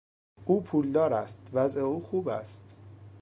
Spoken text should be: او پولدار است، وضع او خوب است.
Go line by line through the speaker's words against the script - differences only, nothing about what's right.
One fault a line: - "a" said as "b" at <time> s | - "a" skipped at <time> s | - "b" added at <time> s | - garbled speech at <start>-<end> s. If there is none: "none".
none